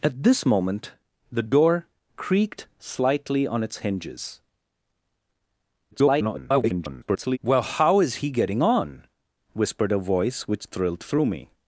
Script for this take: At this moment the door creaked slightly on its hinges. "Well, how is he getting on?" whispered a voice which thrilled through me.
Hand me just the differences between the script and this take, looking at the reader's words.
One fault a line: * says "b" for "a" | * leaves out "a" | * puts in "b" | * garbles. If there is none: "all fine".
* garbles